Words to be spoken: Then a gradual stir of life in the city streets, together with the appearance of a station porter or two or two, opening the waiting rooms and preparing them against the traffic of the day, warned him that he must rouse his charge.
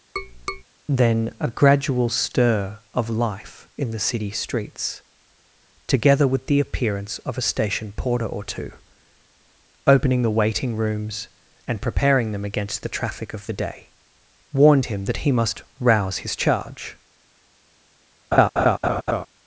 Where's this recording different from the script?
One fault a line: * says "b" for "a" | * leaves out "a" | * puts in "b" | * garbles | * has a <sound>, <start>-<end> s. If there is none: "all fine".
* has a tap, 0.2-0.6 s
* leaves out "or two"
* has a laugh, 18.3-19.3 s